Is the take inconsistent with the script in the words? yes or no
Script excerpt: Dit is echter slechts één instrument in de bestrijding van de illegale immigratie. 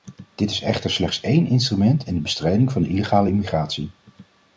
no